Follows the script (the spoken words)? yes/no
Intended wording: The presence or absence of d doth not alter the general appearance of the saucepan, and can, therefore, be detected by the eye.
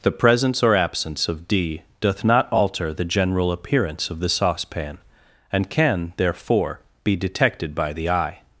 yes